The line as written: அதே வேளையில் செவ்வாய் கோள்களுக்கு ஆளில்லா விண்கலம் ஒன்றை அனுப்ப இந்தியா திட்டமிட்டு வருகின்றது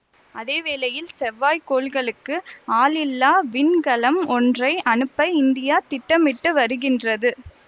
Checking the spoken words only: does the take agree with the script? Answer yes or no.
yes